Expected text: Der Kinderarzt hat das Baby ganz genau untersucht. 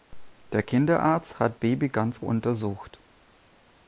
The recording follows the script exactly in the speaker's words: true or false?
false